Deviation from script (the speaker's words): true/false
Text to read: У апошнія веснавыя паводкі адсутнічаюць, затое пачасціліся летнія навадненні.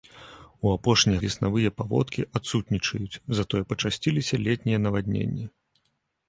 false